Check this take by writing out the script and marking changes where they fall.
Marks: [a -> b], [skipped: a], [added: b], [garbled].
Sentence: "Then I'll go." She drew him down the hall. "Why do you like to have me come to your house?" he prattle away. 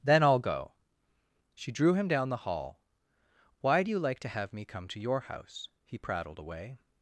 "Then I'll go." She drew him down the hall. "Why do you like to have me come to your house?" he [prattle -> prattled] away.